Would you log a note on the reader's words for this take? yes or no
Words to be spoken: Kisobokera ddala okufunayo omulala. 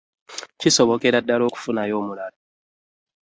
no